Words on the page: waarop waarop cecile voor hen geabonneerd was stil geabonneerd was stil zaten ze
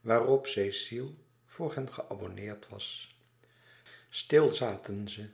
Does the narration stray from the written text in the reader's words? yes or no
yes